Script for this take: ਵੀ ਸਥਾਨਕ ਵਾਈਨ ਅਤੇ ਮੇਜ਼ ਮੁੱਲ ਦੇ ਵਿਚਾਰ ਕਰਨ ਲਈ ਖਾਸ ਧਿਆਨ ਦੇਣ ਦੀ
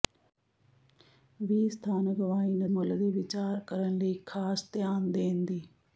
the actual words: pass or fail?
fail